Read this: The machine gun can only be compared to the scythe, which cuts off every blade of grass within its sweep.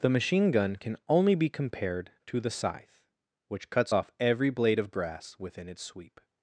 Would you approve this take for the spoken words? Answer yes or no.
yes